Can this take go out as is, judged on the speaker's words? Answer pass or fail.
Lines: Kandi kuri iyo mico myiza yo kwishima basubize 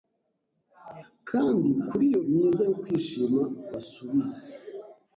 fail